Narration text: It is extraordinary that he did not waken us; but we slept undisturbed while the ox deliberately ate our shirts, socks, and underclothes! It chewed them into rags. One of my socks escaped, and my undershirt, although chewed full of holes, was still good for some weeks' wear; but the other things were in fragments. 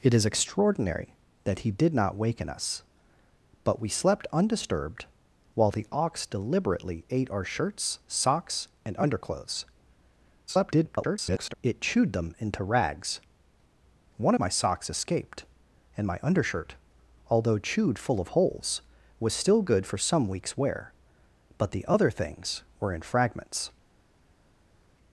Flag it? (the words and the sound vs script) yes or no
yes